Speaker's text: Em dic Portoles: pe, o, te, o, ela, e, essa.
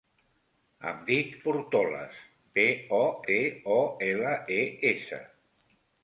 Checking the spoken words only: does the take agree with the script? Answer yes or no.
yes